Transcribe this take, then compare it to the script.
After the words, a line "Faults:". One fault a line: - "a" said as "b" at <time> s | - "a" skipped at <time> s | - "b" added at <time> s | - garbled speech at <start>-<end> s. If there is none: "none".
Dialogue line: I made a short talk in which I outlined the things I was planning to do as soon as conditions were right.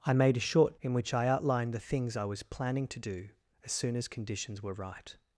I made a short in which I outlined the things I was planning to do as soon as conditions were right.
Faults:
- "talk" skipped at 0.8 s